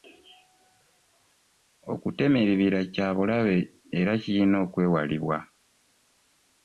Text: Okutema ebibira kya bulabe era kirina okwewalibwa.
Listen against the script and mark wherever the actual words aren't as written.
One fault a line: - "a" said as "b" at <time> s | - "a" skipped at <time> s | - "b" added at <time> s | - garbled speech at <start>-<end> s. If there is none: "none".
none